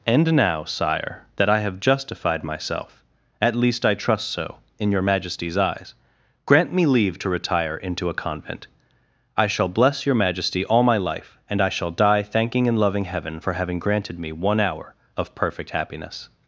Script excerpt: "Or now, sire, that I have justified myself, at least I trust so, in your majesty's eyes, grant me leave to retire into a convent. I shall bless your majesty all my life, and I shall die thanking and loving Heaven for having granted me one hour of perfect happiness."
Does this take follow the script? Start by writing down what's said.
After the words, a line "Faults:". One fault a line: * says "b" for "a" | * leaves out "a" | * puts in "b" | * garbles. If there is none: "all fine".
"And now, sire, that I have justified myself, at least I trust so, in your majesty's eyes, grant me leave to retire into a convent. I shall bless your majesty all my life, and I shall die thanking and loving Heaven for having granted me one hour of perfect happiness."
Faults:
* says "And" for "Or"